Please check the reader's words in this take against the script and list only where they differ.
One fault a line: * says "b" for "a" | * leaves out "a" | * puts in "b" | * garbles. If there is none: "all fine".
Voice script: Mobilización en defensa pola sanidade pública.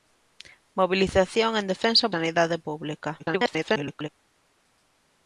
* leaves out "pola"
* garbles